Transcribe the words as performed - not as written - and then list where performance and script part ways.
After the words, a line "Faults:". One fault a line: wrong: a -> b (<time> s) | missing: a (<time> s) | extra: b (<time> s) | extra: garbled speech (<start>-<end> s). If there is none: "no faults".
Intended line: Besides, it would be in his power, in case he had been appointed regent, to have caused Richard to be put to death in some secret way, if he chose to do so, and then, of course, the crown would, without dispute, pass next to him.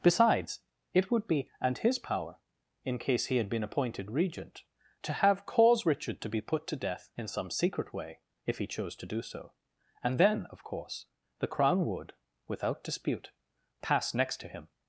Besides, it would be and his power, in case he had been appointed regent, to have cause Richard to be put to death in some secret way, if he chose to do so, and then, of course, the crown would, without dispute, pass next to him.
Faults:
wrong: in -> and (1.6 s)
wrong: caused -> cause (5.5 s)